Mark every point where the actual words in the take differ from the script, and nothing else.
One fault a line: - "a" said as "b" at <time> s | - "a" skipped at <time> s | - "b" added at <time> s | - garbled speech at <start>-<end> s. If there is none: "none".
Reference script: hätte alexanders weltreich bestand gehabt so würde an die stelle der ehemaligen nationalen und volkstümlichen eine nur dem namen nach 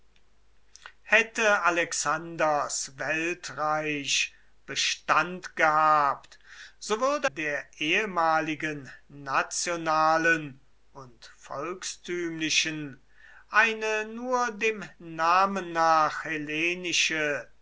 - "an die stelle" skipped at 7.3 s